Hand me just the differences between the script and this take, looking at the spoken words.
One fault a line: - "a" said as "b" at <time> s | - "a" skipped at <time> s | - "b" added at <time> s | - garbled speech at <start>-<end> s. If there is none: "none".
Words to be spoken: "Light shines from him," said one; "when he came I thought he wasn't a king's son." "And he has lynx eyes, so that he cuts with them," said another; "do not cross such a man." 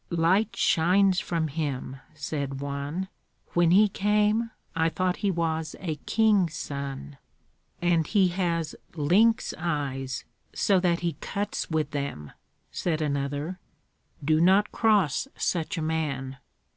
- "wasn't" said as "was" at 5.3 s